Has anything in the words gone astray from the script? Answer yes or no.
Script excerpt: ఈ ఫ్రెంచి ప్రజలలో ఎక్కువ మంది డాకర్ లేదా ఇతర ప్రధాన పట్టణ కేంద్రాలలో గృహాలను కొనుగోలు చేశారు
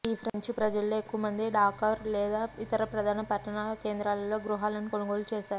no